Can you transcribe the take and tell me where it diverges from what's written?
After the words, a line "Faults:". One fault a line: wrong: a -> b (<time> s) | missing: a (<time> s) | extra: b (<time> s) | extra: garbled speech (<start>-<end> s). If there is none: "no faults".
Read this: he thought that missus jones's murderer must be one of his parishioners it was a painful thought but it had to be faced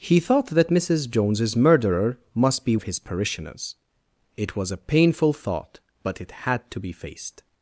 he thought that missus jones's murderer must be of his parishioners it was a painful thought but it had to be faced
Faults:
missing: one (2.8 s)